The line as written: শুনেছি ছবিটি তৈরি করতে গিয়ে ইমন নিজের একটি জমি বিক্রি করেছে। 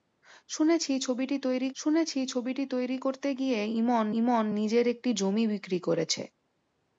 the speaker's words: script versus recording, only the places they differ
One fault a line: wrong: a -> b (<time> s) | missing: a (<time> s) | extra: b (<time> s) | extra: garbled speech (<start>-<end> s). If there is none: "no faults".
extra: শুনেছি ছবিটি তৈরি (1.7 s)
extra: ইমন (4.2 s)